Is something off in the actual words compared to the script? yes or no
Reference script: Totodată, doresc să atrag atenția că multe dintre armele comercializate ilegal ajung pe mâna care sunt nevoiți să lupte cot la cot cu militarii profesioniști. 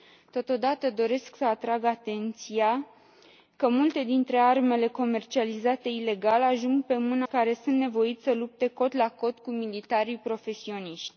no